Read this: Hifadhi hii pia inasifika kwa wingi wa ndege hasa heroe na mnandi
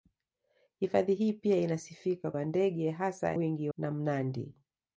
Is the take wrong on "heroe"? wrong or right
wrong